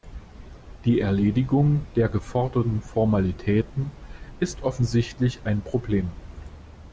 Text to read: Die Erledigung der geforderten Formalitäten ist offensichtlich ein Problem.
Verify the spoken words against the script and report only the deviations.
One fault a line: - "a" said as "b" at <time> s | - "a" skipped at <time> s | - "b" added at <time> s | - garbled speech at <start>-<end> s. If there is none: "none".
none